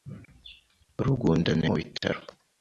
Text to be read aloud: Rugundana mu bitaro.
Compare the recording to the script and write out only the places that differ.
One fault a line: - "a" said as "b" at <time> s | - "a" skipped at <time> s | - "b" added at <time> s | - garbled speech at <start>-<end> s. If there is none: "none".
none